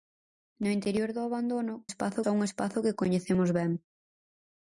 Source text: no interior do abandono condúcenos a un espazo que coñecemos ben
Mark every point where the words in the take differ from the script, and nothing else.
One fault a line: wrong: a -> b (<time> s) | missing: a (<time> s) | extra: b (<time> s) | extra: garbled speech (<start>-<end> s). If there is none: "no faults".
wrong: condúcenos -> espazo (1.9 s)